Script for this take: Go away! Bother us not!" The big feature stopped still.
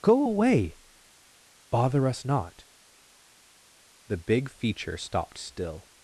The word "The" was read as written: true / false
true